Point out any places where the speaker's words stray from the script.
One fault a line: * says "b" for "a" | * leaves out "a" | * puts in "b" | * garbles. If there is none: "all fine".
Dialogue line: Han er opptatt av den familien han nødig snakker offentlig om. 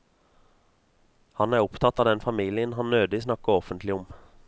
all fine